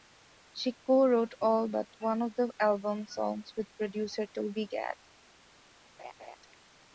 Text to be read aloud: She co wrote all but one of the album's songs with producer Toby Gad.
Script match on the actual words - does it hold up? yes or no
yes